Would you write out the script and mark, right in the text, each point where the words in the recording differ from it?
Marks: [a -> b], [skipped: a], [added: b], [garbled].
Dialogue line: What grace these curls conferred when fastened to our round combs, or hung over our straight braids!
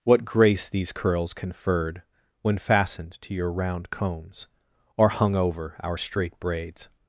What grace these curls conferred when fastened to [our -> your] round combs, or hung over our straight braids!